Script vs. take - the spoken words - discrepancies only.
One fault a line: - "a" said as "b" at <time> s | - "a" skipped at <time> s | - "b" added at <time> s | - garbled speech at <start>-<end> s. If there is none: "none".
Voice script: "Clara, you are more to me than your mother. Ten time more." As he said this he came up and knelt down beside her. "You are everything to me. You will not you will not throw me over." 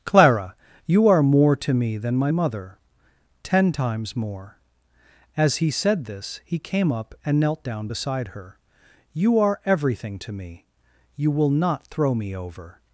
- "your" said as "my" at 2.1 s
- "time" said as "times" at 3.7 s
- "you will not" skipped at 11.9 s